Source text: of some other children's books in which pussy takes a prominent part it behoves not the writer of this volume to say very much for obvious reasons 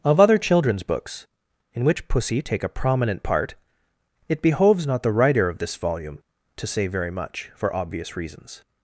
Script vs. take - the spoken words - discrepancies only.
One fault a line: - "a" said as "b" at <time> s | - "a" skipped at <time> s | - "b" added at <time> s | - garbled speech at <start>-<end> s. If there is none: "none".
- "some" skipped at 0.2 s
- "takes" said as "take" at 2.4 s